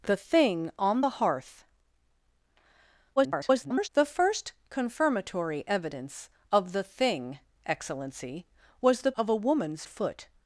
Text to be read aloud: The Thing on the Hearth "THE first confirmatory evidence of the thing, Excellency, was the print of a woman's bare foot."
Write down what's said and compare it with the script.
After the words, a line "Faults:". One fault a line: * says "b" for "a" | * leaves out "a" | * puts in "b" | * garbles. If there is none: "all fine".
The Thing on the Hearth [garbled] "THE first confirmatory evidence of the thing, Excellency, was the of a woman's foot."
Faults:
* garbles
* leaves out "print"
* leaves out "bare"